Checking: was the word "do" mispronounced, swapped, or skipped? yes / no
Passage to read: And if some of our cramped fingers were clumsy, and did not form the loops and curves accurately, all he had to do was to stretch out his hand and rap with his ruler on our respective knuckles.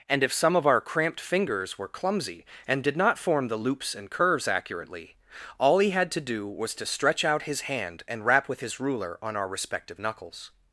no